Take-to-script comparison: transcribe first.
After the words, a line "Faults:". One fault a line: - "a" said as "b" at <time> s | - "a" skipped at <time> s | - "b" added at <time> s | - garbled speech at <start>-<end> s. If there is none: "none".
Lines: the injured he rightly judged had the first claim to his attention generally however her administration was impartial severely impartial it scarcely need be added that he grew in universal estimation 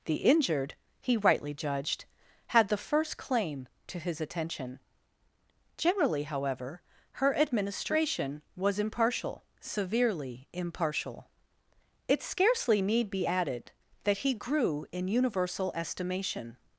the injured he rightly judged had the first claim to his attention generally however her administration was impartial severely impartial it scarcely need be added that he grew in universal estimation
Faults:
none